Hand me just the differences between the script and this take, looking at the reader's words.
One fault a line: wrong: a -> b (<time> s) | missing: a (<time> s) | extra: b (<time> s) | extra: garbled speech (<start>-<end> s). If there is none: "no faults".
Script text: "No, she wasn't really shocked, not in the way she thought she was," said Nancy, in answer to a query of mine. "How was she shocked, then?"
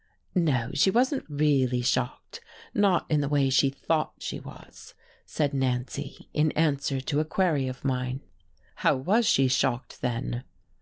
no faults